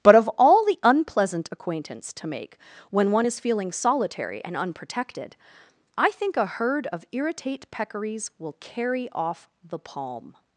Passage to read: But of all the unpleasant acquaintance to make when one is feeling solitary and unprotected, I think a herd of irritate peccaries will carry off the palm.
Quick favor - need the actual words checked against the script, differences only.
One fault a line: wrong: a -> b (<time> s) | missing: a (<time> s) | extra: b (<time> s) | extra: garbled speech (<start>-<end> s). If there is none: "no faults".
no faults